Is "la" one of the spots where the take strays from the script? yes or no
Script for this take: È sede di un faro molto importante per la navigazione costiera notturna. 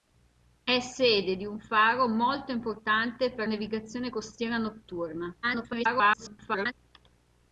yes